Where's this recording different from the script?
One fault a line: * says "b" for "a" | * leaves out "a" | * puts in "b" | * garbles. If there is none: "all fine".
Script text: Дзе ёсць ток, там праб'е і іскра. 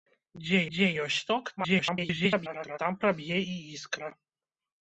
* puts in "дзе"
* garbles